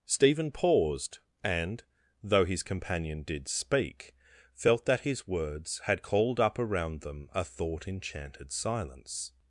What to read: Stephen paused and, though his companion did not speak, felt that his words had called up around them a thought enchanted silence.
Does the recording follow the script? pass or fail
fail